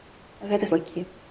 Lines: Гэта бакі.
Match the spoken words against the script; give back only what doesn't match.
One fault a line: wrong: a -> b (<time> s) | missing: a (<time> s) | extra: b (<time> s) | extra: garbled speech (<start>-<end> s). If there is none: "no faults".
no faults